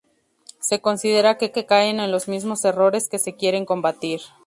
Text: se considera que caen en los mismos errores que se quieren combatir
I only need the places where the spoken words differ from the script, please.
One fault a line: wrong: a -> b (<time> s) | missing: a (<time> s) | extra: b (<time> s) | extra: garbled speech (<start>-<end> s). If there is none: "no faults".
extra: que (1.5 s)